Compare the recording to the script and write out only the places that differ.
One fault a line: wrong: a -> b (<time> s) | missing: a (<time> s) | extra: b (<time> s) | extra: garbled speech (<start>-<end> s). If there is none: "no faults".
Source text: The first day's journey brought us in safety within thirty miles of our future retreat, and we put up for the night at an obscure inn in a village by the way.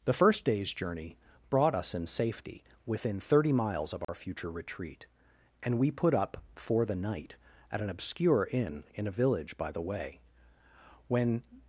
extra: When (11.1 s)